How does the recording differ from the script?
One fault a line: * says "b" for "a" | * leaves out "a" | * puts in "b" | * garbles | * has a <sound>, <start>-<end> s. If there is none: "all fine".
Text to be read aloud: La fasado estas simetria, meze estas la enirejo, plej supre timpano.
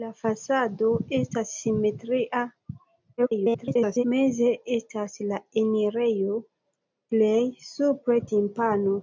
* garbles